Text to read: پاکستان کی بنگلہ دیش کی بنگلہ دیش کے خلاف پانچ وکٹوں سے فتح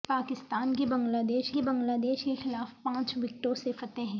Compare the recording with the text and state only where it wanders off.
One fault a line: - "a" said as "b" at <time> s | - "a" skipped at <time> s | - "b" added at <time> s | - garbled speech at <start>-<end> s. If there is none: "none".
none